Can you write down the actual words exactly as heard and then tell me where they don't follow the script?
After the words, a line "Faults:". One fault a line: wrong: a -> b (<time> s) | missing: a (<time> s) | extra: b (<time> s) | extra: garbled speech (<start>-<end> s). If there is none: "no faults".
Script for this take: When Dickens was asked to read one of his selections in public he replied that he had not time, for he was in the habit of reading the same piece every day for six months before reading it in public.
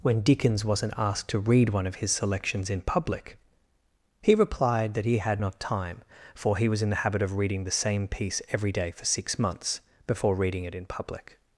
When Dickens wasn't asked to read one of his selections in public he replied that he had not time, for he was in the habit of reading the same piece every day for six months before reading it in public.
Faults:
wrong: was -> wasn't (0.7 s)